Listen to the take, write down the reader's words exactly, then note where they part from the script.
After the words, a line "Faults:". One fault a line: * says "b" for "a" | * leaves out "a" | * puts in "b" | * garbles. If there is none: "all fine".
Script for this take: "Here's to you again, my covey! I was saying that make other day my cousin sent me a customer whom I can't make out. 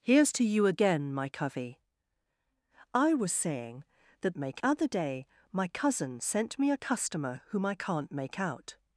"Here's to you again, my covey! I was saying that make other day my cousin sent me a customer whom I can't make out.
Faults:
all fine